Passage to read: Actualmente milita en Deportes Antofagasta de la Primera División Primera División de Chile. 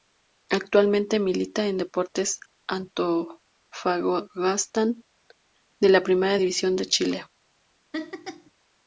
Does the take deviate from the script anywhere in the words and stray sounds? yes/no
yes